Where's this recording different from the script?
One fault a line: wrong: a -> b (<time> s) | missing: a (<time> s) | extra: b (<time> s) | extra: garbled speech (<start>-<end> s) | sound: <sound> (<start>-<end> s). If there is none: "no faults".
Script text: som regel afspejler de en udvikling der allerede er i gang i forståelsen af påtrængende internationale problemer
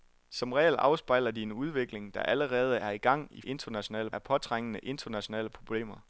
wrong: forståelsen -> internationale (3.4 s)